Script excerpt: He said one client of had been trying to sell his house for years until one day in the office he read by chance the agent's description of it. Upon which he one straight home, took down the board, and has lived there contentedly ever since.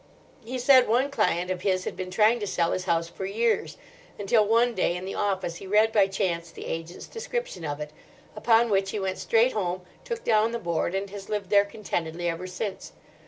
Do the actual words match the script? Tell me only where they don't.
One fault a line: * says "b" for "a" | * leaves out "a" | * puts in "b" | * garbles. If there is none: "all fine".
* puts in "his"
* says "went" for "one"